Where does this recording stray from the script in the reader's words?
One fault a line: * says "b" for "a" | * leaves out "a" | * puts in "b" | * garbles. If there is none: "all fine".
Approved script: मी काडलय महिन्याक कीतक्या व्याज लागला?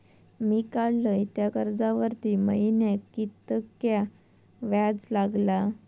* puts in "त्या कर्जावरती"